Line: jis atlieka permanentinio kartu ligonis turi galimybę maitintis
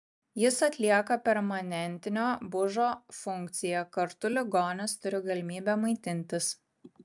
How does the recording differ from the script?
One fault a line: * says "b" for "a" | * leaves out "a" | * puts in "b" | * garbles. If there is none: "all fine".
* puts in "bužo funkciją"